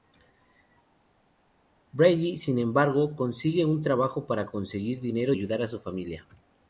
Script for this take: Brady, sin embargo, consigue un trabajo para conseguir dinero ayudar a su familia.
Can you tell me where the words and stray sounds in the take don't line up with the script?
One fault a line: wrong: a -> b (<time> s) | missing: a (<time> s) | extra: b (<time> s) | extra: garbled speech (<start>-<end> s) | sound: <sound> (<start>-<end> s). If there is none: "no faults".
no faults